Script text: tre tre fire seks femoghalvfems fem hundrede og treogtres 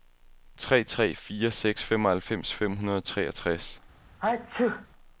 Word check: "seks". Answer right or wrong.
right